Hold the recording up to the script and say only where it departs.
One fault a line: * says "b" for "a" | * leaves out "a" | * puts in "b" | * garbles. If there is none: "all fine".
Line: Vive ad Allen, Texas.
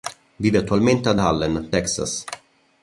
* puts in "attualmente"